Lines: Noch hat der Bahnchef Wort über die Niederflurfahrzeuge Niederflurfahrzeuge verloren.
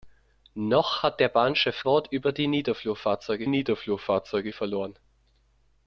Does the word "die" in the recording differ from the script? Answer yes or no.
no